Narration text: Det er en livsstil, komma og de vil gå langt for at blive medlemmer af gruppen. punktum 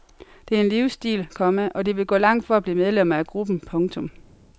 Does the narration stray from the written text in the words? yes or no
no